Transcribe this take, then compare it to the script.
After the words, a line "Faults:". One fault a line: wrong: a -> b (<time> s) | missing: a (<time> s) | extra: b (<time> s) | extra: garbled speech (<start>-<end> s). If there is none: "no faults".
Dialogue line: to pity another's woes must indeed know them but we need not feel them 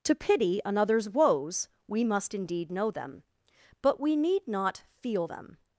to pity another's woes we must indeed know them but we need not feel them
Faults:
extra: we (1.9 s)